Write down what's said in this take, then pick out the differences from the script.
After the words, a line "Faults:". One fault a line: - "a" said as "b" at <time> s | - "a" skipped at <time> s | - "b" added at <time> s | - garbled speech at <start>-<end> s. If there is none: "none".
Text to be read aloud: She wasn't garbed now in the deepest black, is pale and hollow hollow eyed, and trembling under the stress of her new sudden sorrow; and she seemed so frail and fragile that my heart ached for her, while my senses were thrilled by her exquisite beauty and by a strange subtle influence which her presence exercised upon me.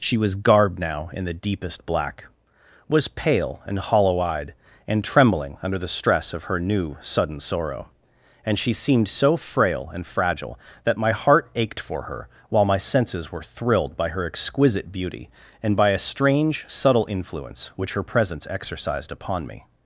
She was garbed now in the deepest black, was pale and hollow eyed, and trembling under the stress of her new sudden sorrow; and she seemed so frail and fragile that my heart ached for her, while my senses were thrilled by her exquisite beauty and by a strange subtle influence which her presence exercised upon me.
Faults:
- "wasn't" said as "was" at 0.2 s
- "is" said as "was" at 2.9 s
- "hollow" skipped at 4.2 s